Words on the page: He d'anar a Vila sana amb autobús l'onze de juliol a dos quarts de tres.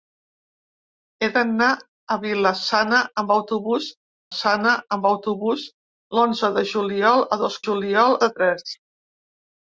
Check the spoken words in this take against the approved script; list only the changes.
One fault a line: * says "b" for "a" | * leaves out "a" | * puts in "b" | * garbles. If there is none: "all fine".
* puts in "sana amb autobús"
* says "juliol" for "quarts"